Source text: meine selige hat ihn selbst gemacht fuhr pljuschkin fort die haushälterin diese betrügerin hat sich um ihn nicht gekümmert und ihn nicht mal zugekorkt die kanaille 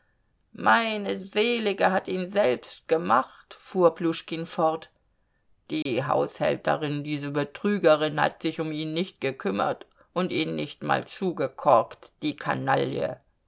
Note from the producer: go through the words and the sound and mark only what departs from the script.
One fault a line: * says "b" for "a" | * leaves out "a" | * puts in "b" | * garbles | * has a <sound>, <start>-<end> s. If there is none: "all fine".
* has a dropout, 5.8-5.9 s